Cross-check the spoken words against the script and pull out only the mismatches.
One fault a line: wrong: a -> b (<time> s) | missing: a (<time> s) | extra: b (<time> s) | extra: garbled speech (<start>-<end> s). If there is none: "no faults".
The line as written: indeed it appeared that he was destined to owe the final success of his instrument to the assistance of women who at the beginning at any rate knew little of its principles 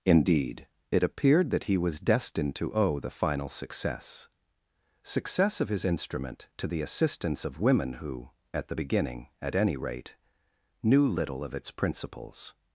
extra: success (5.0 s)